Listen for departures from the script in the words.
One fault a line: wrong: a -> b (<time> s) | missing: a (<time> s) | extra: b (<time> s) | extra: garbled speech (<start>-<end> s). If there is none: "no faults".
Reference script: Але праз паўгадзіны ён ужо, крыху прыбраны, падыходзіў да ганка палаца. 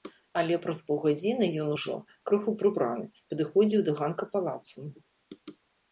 no faults